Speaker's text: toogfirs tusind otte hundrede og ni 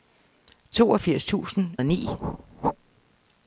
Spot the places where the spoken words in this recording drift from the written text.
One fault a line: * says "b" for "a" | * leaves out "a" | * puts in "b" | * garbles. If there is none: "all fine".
* leaves out "otte hundrede"